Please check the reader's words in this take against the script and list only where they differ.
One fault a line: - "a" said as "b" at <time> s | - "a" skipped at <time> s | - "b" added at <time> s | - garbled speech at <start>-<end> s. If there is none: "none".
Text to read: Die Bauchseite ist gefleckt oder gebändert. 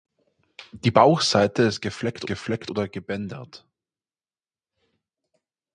- "gefleckt" added at 2.2 s